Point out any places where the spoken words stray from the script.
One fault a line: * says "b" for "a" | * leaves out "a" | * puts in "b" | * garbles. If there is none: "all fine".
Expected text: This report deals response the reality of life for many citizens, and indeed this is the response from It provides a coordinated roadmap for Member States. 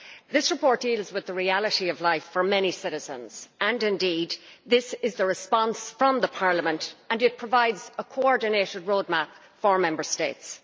* says "with" for "response"
* puts in "Parliament and"